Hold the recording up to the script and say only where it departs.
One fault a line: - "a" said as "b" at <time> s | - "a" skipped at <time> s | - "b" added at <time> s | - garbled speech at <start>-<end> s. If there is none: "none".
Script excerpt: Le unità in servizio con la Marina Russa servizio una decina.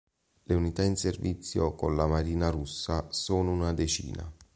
- "servizio" said as "sono" at 3.1 s